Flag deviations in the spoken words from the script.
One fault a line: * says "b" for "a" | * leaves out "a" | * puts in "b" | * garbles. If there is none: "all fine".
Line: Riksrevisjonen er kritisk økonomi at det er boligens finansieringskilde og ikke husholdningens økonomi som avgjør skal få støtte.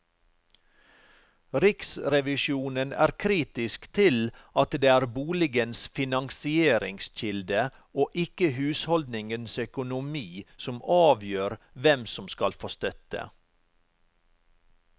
* says "til" for "økonomi"
* puts in "hvem som"